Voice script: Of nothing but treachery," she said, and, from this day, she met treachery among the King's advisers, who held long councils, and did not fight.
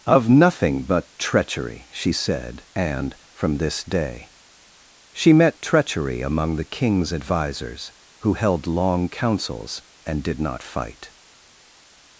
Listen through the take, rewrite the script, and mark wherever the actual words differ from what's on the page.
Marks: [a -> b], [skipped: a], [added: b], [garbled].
Of nothing but treachery," she said, and, from this day, she met treachery among the King's advisers, who held long councils, and did not fight.